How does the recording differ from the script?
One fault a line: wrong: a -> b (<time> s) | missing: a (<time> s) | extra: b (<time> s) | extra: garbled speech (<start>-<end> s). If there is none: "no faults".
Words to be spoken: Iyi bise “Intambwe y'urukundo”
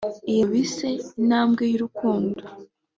no faults